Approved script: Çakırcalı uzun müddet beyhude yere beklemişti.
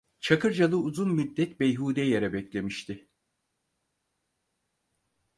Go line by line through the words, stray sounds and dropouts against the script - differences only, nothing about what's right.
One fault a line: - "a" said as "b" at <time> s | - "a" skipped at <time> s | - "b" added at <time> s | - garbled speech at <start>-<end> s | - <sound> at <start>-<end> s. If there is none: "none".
none